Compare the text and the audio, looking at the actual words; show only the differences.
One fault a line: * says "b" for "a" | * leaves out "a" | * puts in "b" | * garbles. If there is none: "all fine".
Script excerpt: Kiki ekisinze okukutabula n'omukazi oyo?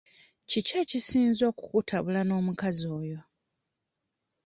all fine